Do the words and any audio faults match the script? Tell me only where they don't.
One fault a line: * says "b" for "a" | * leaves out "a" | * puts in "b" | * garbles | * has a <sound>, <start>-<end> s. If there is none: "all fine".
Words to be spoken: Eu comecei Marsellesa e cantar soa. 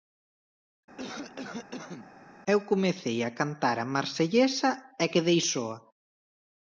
* has a cough, 1.0-2.1 s
* puts in "a cantar a"
* says "quedei" for "cantar"